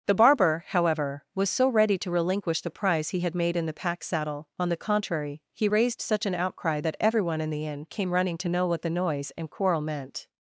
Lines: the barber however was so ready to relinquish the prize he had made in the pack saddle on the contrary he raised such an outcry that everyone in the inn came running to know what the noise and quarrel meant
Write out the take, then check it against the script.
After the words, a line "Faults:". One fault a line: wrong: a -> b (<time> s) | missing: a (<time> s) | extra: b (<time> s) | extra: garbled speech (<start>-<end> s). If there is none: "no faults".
the barber however was so ready to relinquish the prize he had made in the pack saddle on the contrary he raised such an outcry that everyone in the inn came running to know what the noise and quarrel meant
Faults:
no faults